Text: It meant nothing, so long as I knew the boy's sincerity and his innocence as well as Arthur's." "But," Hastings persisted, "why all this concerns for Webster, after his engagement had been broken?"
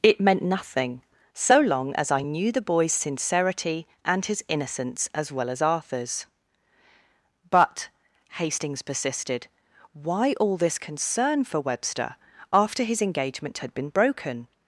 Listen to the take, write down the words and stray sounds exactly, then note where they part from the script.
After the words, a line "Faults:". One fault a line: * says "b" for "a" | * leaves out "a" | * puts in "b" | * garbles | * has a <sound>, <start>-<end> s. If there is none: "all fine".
It meant nothing, so long as I knew the boy's sincerity and his innocence as well as Arthur's." "But," Hastings persisted, "why all this concern for Webster, after his engagement had been broken?"
Faults:
* says "concern" for "concerns"